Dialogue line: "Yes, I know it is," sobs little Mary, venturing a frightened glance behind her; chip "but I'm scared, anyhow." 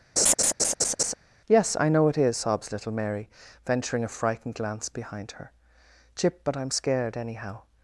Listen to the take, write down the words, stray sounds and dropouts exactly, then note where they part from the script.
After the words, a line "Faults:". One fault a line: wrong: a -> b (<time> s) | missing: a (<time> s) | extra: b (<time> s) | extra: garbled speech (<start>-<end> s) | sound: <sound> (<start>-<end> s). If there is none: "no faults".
"Yes, I know it is," sobs little Mary, venturing a frightened glance behind her; chip "but I'm scared, anyhow."
Faults:
sound: laugh (0.2-1.1 s)